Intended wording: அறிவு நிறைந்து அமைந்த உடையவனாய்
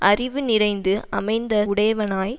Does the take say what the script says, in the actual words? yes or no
yes